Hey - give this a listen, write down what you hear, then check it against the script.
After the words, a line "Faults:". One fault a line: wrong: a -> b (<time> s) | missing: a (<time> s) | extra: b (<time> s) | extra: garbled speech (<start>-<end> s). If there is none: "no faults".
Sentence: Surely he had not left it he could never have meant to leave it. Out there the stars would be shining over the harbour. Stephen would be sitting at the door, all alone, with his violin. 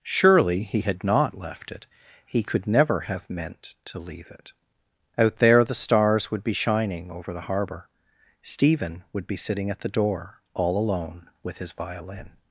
Surely he had not left it he could never have meant to leave it. Out there the stars would be shining over the harbour. Stephen would be sitting at the door, all alone, with his violin.
Faults:
no faults